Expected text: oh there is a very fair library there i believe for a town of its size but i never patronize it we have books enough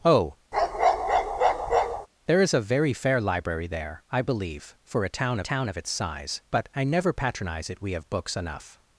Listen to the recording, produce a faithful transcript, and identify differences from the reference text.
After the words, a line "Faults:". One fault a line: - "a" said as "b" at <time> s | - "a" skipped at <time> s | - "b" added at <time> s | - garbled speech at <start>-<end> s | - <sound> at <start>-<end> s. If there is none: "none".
oh there is a very fair library there i believe for a town town of its size but i never patronize it we have books enough
Faults:
- bark at 0.5-2.1 s
- "town" added at 5.4 s